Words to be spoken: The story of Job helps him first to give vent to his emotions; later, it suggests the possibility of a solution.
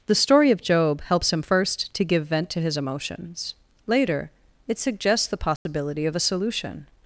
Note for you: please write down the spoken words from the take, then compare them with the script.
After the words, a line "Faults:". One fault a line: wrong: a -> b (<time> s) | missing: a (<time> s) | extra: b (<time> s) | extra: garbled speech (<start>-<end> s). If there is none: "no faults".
The story of Job helps him first to give vent to his emotions; later, it suggests the possibility of a solution.
Faults:
no faults